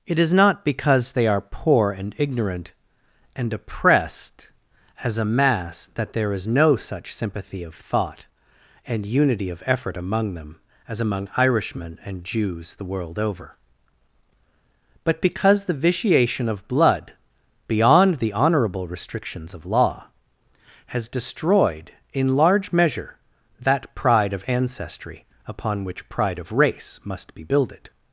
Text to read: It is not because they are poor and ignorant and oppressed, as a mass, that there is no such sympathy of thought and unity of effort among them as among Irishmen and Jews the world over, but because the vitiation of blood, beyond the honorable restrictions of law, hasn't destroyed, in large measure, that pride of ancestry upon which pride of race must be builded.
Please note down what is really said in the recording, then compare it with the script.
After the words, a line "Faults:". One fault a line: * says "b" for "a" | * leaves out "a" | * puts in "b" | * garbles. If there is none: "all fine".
It is not because they are poor and ignorant and oppressed, as a mass, that there is no such sympathy of thought and unity of effort among them as among Irishmen and Jews the world over, but because the vitiation of blood, beyond the honorable restrictions of law, has destroyed, in large measure, that pride of ancestry upon which pride of race must be builded.
Faults:
* says "has" for "hasn't"